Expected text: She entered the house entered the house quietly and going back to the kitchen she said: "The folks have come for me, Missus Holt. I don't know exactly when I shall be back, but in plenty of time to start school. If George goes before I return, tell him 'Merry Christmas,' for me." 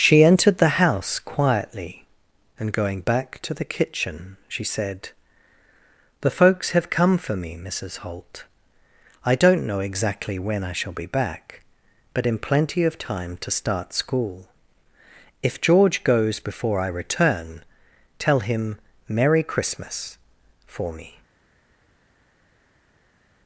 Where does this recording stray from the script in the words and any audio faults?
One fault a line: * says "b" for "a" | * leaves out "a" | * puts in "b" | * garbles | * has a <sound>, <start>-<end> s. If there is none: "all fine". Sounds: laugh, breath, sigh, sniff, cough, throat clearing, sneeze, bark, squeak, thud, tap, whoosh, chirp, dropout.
* leaves out "entered the house"